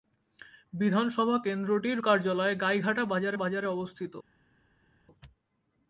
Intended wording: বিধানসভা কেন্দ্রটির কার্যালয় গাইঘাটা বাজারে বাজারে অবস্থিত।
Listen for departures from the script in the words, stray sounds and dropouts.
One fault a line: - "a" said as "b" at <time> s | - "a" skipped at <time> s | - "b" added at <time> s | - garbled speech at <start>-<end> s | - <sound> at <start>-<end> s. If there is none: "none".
none